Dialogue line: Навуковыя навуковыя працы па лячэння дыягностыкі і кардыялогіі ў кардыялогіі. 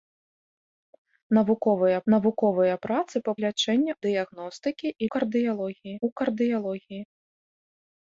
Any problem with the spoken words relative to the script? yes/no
no